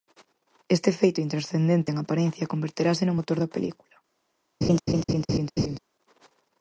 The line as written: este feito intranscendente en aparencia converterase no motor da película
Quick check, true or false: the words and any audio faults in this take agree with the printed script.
false